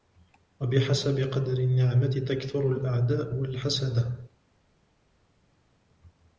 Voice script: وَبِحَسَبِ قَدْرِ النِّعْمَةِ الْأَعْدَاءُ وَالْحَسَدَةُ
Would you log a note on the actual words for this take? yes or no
yes